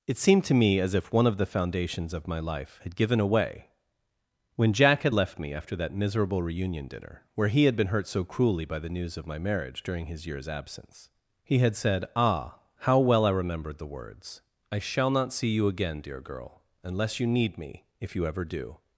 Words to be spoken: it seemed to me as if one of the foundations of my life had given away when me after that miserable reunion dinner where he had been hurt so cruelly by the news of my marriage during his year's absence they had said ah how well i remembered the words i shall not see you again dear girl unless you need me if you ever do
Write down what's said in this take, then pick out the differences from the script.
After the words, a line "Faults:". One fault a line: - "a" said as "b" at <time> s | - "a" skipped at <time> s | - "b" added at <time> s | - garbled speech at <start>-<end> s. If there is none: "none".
it seemed to me as if one of the foundations of my life had given away when jack had left me after that miserable reunion dinner where he had been hurt so cruelly by the news of my marriage during his year's absence he had said ah how well i remembered the words i shall not see you again dear girl unless you need me if you ever do
Faults:
- "jack had left" added at 4.7 s
- "they" said as "he" at 11.4 s